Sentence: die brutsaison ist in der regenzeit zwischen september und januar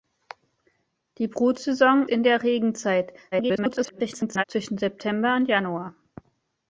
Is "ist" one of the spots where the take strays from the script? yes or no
yes